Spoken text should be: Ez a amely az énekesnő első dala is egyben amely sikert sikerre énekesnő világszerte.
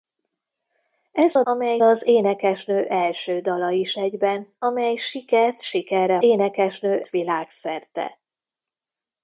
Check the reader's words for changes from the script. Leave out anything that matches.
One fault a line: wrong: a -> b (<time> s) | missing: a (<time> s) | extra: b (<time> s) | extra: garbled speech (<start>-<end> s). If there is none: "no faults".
no faults